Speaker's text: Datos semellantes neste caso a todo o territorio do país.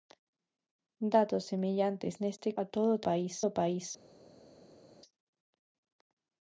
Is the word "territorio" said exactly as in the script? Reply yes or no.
no